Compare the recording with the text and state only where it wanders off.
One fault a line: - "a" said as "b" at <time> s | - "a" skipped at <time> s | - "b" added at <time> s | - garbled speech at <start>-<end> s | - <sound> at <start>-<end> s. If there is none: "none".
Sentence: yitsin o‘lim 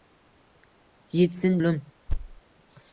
- thud at 2.1-2.4 s